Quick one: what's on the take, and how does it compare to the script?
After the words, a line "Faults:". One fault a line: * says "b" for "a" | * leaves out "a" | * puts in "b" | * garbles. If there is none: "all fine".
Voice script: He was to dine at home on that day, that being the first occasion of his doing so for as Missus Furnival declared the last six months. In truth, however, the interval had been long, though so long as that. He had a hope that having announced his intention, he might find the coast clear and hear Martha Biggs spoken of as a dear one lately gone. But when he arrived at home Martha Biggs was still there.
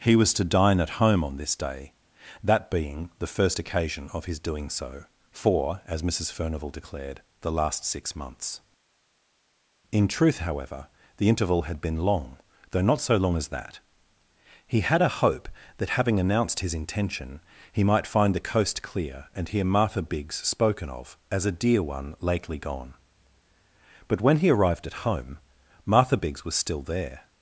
He was to dine at home on this day, that being the first occasion of his doing so for as Missus Furnival declared the last six months. In truth, however, the interval had been long, though not so long as that. He had a hope that having announced his intention, he might find the coast clear and hear Martha Biggs spoken of as a dear one lately gone. But when he arrived at home Martha Biggs was still there.
Faults:
* says "this" for "that"
* puts in "not"